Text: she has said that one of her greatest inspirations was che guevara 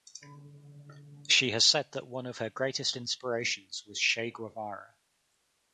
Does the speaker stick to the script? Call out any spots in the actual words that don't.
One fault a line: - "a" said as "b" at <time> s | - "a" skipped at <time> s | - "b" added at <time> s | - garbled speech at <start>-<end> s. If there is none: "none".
none